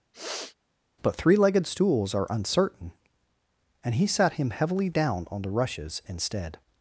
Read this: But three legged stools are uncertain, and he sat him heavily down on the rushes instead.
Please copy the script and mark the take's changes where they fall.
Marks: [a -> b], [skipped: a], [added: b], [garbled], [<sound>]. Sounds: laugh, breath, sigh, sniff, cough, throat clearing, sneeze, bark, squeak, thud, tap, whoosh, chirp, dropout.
[sniff] But three legged stools are uncertain, and he sat him heavily down on the rushes instead.